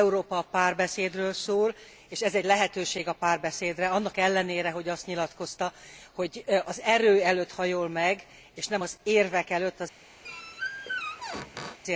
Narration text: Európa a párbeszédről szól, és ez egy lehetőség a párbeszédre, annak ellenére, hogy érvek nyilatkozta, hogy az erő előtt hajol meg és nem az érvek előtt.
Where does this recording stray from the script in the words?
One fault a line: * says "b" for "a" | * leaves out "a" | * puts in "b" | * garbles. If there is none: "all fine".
* says "azt" for "érvek"